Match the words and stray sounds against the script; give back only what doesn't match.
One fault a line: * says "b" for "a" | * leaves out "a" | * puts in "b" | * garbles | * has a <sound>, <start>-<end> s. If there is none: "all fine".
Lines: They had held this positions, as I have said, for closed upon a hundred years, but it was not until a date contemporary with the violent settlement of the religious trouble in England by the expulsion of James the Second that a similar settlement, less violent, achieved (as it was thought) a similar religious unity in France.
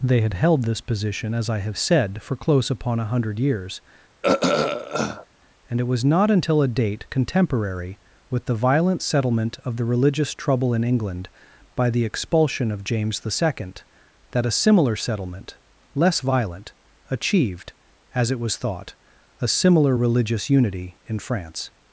* says "position" for "positions"
* says "close" for "closed"
* has a throat clearing, 4.2-5.3 s
* says "and" for "but"